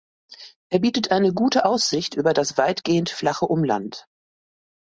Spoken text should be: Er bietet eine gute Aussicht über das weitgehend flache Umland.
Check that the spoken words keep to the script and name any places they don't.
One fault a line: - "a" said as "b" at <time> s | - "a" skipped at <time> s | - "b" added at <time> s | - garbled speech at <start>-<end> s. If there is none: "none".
none